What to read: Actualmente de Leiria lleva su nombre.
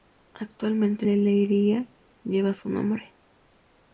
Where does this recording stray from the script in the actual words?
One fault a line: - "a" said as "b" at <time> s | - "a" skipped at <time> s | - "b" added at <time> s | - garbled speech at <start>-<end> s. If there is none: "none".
none